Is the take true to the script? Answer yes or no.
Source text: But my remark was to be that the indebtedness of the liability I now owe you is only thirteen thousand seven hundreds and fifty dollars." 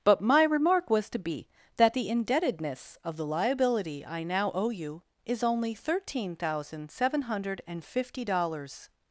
no